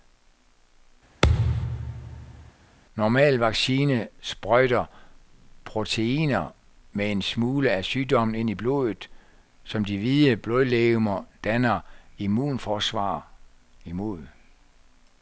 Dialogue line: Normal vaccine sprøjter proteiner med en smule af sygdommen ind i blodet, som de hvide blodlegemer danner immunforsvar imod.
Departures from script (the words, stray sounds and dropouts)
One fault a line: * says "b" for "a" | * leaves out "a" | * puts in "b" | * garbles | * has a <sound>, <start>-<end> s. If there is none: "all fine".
* has a thud, 1.2-2.5 s